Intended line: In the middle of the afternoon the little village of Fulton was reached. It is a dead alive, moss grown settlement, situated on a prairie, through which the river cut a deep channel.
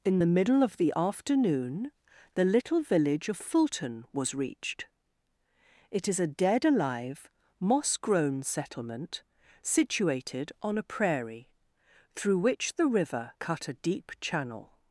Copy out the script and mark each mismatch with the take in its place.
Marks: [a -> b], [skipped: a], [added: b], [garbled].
In the middle of the afternoon the little village of Fulton was reached. It is a dead alive, moss grown settlement, situated on a prairie, through which the river cut a deep channel.